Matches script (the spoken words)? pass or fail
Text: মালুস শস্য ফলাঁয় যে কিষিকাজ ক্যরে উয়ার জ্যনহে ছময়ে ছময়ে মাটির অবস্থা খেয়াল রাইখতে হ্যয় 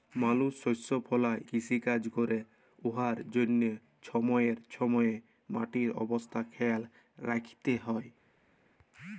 fail